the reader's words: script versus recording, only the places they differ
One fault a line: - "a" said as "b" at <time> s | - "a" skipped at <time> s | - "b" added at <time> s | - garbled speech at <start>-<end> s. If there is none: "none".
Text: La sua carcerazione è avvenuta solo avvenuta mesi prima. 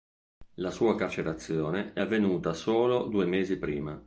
- "avvenuta" said as "due" at 3.1 s